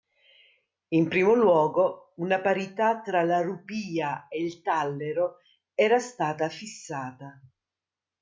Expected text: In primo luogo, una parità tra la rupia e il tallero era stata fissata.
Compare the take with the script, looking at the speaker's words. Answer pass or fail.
pass